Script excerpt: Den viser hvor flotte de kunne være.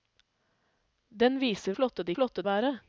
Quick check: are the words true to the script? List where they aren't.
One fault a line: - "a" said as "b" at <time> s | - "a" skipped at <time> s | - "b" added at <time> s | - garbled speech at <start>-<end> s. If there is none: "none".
- "hvor" skipped at 1.8 s
- "kunne" said as "flotte" at 2.1 s